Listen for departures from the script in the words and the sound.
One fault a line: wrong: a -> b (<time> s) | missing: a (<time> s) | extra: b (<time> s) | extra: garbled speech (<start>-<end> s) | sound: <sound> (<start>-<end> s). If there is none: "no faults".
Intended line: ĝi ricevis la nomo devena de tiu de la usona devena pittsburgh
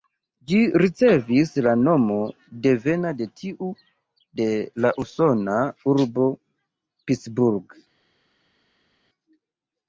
wrong: devena -> urbo (6.0 s)